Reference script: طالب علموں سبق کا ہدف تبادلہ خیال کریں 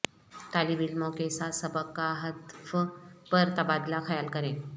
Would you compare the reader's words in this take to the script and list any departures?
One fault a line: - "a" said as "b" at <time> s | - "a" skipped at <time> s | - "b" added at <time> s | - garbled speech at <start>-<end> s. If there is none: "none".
- "کے ساتھ" added at 1.1 s
- "پر" added at 3.3 s